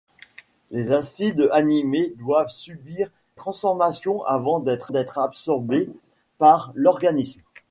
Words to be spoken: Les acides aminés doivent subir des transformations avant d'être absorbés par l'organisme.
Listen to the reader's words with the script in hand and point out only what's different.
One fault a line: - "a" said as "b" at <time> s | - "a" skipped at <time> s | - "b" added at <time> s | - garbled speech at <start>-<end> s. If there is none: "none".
- "des" skipped at 3.1 s
- "d'être" added at 4.9 s